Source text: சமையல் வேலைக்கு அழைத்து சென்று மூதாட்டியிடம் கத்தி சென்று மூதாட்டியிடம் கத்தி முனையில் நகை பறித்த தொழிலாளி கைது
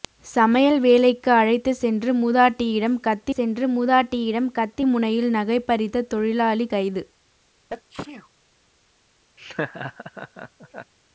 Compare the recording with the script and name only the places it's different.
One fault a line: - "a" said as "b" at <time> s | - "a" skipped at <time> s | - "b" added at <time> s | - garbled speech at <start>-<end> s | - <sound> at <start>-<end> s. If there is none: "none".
- sneeze at 7.7-8.3 s
- laugh at 9.4-10.9 s